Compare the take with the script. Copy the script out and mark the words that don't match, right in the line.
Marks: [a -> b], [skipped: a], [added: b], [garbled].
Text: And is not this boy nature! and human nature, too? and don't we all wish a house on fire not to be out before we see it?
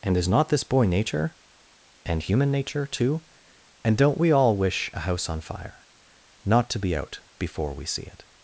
And is not this boy nature! and human nature, too? and don't we all wish a house on fire not to be out before we see it?